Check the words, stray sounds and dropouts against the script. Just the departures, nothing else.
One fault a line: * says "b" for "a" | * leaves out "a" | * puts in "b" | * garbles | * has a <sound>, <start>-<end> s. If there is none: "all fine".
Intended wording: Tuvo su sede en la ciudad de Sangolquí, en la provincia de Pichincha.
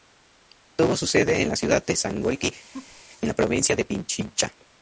* has a laugh, 2.7-3.0 s